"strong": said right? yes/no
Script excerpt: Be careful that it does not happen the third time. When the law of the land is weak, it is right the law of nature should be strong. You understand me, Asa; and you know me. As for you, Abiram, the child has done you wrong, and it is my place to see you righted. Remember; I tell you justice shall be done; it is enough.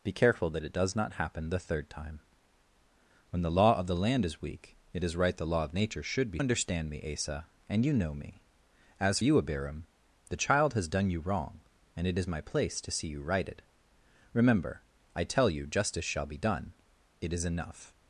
no